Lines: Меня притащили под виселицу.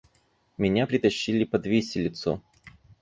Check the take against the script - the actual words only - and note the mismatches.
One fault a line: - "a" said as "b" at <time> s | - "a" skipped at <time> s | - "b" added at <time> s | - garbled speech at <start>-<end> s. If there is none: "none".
none